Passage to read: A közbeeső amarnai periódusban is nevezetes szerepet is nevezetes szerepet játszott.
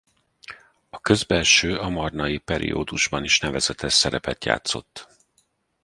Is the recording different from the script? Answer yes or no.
yes